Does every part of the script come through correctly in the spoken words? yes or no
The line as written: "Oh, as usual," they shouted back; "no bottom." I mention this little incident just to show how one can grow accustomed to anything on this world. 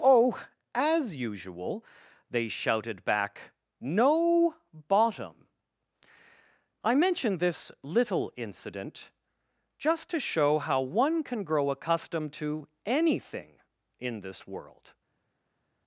no